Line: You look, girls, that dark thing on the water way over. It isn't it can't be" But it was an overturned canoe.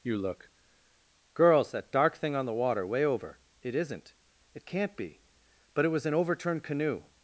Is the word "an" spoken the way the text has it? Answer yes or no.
yes